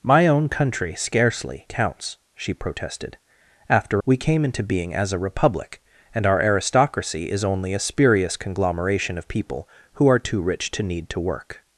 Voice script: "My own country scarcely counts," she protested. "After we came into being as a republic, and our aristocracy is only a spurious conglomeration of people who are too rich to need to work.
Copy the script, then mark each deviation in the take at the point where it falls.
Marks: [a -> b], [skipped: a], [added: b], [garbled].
"My own country scarcely counts," she protested. "After we came into being as a republic, and our aristocracy is only a spurious conglomeration of people who are too rich to need to work.